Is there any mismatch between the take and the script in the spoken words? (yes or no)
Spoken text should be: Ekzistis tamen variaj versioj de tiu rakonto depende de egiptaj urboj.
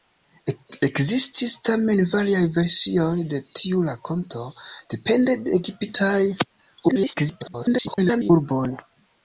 yes